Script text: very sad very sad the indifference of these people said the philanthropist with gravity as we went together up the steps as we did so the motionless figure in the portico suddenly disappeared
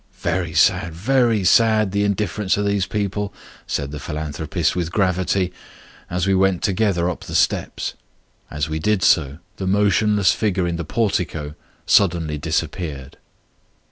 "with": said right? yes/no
yes